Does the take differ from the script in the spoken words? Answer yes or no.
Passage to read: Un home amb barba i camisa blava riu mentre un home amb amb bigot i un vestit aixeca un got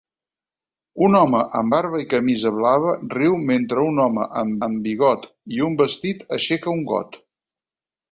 no